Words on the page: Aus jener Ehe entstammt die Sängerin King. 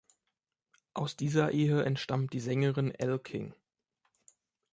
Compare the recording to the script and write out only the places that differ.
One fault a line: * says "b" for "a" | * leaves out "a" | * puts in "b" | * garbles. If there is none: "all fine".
* says "dieser" for "jener"
* puts in "Elle"